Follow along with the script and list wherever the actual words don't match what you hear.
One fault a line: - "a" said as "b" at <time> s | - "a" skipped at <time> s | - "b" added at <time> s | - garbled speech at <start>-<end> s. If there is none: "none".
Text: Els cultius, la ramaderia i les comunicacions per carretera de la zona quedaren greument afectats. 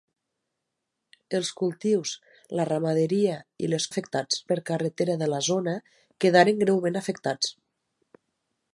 - "comunicacions" said as "afectats" at 3.9 s